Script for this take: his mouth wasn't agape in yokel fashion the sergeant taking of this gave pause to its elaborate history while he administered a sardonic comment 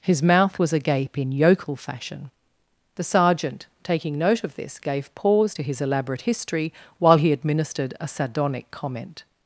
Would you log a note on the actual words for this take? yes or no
yes